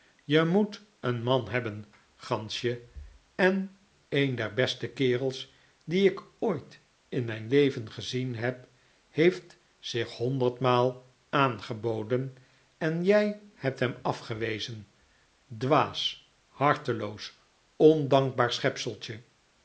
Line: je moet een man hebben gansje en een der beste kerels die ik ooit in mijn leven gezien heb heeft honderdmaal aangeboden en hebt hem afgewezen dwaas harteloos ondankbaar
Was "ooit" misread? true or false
false